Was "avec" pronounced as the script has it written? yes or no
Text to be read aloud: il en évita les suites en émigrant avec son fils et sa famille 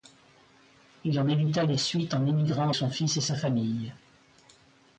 no